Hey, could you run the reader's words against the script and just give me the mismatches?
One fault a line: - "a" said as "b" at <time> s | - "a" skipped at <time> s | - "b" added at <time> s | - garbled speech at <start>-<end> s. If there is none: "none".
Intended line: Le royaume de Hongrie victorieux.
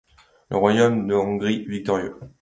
none